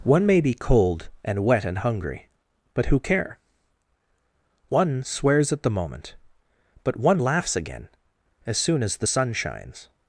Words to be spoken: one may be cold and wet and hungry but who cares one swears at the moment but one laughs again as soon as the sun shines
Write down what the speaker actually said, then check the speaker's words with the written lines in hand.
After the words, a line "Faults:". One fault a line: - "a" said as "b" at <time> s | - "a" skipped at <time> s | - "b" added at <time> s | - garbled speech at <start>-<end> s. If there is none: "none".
one may be cold and wet and hungry but who care one swears at the moment but one laughs again as soon as the sun shines
Faults:
- "cares" said as "care" at 3.0 s